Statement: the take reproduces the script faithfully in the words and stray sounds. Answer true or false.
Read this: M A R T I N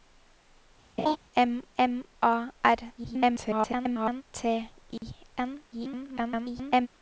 false